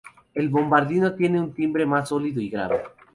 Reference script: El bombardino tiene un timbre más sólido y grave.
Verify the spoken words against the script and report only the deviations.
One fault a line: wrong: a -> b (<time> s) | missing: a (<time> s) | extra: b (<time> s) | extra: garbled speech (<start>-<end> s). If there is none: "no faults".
no faults